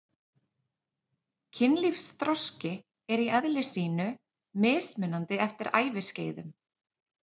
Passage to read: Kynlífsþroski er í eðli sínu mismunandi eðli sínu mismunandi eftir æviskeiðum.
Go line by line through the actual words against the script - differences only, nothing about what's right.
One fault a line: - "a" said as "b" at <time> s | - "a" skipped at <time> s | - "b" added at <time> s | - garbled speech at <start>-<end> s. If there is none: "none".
- "eðli sínu mismunandi" skipped at 5.4 s